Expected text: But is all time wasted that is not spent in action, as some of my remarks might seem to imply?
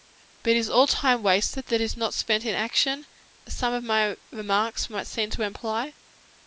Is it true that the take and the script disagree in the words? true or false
false